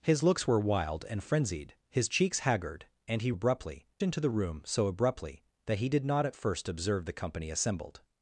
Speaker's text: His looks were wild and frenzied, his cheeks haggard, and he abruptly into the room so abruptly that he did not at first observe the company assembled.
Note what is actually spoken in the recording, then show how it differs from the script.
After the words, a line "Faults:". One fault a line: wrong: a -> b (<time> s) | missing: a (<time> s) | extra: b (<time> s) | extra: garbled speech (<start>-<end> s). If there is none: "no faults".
His looks were wild and frenzied, his cheeks haggard, and he abruptly into the room so abruptly that he did not at first observe the company assembled.
Faults:
no faults